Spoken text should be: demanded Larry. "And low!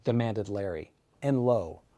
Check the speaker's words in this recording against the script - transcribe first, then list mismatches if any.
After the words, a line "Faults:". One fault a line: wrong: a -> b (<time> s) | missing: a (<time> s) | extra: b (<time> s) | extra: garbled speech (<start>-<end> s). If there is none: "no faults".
demanded Larry. "And low!
Faults:
no faults